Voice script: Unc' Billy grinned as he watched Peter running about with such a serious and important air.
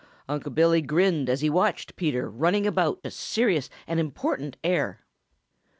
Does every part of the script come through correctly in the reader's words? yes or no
no